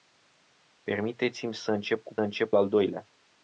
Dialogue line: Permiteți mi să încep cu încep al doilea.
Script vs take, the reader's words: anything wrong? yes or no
no